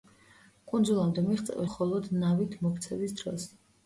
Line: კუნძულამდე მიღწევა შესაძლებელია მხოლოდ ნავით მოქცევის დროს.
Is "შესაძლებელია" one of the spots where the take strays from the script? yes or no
yes